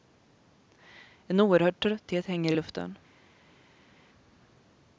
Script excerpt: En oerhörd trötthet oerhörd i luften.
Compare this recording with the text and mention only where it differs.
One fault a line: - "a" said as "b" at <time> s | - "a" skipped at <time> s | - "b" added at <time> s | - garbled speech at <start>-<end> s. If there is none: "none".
- "oerhörd" said as "hänger" at 2.2 s